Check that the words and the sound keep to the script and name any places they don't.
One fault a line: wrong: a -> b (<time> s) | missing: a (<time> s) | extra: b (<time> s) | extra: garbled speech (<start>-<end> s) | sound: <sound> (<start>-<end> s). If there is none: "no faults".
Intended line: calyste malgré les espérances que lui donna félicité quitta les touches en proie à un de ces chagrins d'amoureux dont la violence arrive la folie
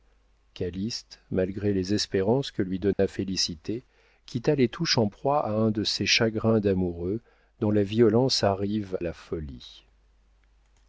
sound: dropout (2.9-3.0 s)